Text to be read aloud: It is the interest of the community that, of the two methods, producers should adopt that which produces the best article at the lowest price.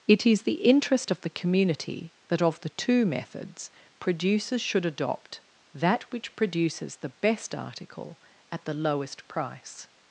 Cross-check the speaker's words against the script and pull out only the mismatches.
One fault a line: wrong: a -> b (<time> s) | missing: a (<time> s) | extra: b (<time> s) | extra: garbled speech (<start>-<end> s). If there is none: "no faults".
no faults